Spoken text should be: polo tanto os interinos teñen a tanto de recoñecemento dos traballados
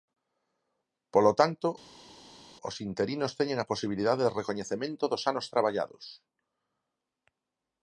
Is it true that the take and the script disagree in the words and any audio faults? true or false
true